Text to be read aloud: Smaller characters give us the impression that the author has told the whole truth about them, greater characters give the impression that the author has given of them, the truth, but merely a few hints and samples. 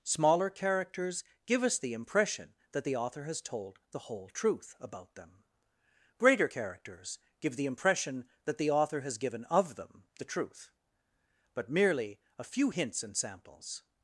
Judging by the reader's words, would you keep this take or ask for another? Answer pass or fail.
pass